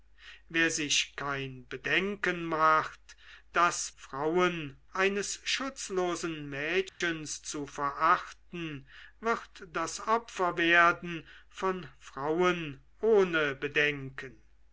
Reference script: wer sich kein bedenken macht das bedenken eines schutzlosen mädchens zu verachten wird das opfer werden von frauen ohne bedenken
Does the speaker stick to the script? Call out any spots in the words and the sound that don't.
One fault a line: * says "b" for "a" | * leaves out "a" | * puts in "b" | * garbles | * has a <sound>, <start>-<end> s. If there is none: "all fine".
* says "frauen" for "bedenken"
* has a dropout, 6.9-7.0 s